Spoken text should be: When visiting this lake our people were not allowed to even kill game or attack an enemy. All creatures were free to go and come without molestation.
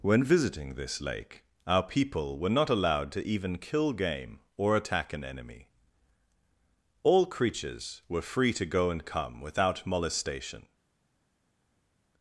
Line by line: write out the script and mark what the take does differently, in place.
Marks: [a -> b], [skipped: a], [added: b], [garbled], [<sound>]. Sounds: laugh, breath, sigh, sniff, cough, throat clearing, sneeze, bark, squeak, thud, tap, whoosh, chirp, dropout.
When visiting this lake our people were not allowed to even kill game or attack an enemy. All creatures were free to go and come without molestation.